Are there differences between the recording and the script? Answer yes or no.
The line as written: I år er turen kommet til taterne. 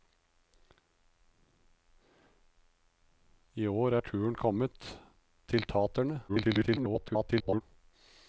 yes